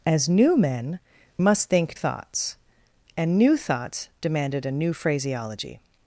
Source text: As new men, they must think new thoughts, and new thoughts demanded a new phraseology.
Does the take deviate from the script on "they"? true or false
true